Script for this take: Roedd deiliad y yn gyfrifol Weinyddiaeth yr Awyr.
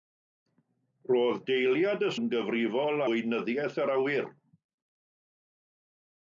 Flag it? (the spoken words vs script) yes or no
no